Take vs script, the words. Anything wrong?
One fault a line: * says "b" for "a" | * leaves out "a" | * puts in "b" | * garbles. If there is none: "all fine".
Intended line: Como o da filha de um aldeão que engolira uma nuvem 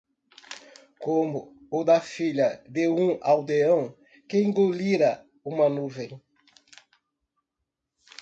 all fine